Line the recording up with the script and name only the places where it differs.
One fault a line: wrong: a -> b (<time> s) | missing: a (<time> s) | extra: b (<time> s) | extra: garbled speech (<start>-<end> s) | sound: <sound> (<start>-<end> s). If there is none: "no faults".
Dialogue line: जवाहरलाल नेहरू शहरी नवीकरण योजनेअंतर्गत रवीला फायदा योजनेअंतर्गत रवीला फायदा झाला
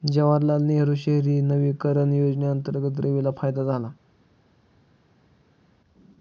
missing: योजनेअंतर्गत रवीला फायदा (3.6 s)